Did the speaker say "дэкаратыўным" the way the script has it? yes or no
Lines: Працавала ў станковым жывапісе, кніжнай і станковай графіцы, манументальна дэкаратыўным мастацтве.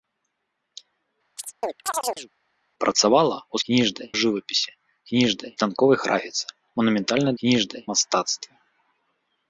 no